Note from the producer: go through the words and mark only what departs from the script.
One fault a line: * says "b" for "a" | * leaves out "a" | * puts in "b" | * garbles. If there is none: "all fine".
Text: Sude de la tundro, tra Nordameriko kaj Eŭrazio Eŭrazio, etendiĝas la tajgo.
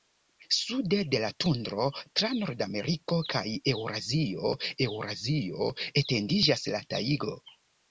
all fine